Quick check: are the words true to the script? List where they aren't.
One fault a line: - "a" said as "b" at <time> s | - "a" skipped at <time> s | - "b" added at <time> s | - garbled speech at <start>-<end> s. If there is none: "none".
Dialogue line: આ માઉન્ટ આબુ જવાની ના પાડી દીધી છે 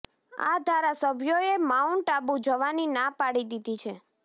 - "ધારાસભ્યોએ" added at 0.6 s